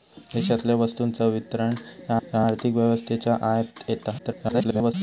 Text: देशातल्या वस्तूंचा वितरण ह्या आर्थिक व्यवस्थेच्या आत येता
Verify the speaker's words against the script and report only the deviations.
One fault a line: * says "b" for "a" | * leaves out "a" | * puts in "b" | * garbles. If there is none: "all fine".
* puts in "ह्या"
* garbles